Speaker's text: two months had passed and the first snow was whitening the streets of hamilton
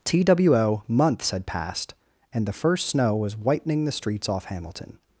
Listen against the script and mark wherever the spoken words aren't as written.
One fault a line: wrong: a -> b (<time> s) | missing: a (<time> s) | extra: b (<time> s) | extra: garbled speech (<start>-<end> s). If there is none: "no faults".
wrong: of -> off (4.3 s)